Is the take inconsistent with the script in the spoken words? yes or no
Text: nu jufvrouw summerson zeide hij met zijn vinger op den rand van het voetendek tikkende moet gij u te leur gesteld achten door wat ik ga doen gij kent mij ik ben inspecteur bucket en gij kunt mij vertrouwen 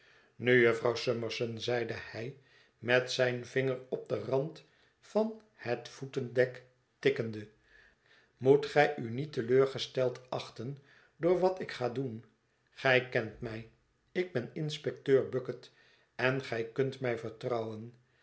yes